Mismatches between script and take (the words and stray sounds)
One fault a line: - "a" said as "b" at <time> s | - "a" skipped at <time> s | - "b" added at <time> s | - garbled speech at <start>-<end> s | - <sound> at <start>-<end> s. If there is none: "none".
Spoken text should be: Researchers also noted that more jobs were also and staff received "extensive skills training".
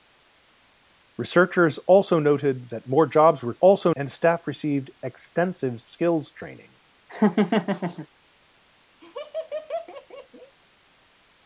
- laugh at 7.1-8.1 s
- laugh at 9.0-10.5 s